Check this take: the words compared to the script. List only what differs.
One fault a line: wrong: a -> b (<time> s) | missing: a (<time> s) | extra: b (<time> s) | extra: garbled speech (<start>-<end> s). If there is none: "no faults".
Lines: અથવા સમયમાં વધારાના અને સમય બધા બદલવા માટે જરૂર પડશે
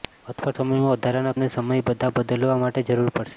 no faults